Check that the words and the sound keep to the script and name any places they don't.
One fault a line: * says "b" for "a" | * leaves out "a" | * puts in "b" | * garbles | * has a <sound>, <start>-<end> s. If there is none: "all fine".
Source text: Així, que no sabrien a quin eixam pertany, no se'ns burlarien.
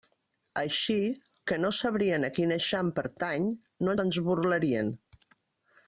all fine